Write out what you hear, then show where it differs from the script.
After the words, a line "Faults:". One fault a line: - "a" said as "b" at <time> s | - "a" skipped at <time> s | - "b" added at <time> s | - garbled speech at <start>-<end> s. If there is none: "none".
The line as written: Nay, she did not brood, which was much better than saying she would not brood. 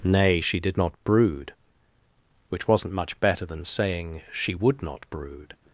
Nay, she did not brood, which wasn't much better than saying she would not brood.
Faults:
- "was" said as "wasn't" at 2.7 s